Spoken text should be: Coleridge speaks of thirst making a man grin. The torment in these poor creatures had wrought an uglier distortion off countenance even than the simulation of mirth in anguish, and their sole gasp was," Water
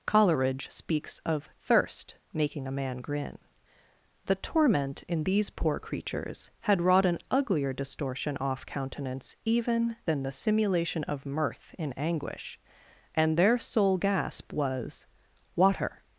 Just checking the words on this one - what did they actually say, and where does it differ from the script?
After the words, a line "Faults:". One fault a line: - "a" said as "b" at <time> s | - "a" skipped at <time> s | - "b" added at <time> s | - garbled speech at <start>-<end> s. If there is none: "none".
Coleridge speaks of thirst making a man grin. The torment in these poor creatures had wrought an uglier distortion off countenance even than the simulation of mirth in anguish, and their sole gasp was," Water
Faults:
none